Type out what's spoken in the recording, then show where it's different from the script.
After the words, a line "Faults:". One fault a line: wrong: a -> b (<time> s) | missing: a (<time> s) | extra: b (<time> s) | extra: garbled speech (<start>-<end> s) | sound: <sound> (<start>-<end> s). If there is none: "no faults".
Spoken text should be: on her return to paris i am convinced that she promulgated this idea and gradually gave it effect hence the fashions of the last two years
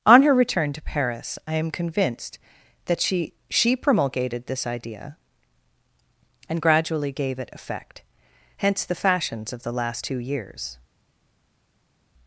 on her return to paris i am convinced that she she promulgated this idea and gradually gave it effect hence the fashions of the last two years
Faults:
extra: she (3.5 s)